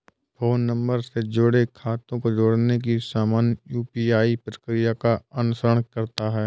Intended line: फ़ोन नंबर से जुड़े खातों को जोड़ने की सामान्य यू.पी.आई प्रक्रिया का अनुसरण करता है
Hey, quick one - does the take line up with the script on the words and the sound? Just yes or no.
yes